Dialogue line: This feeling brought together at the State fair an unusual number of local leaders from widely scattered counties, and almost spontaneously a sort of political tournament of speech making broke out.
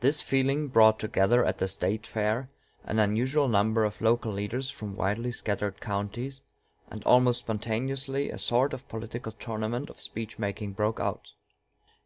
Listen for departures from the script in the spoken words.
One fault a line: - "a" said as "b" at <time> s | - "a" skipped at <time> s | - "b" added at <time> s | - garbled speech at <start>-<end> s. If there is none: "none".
none